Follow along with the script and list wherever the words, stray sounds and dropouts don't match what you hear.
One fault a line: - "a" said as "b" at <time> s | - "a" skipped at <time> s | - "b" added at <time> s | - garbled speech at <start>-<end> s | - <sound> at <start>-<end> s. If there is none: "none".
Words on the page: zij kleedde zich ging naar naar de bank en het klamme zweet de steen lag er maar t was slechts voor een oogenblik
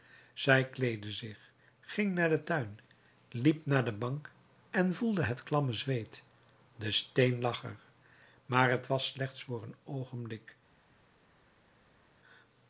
- "den tuin liep" added at 2.3 s
- "voelde" added at 4.9 s